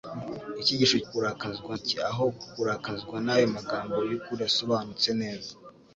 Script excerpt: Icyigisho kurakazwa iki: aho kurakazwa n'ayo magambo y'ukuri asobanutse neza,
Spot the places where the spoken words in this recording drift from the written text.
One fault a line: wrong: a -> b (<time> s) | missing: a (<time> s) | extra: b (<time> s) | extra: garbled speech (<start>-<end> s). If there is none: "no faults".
no faults